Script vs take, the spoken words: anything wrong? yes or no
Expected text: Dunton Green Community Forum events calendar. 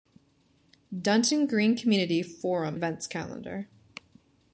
no